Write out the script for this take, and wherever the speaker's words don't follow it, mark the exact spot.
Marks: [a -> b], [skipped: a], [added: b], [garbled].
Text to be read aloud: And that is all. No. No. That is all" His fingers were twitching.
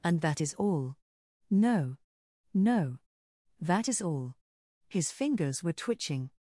And that is all. No. No. That is all" His fingers were twitching.